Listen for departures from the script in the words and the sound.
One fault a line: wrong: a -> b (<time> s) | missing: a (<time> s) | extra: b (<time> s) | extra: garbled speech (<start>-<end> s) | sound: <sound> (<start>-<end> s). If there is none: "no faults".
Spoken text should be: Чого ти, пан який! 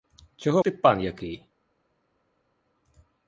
no faults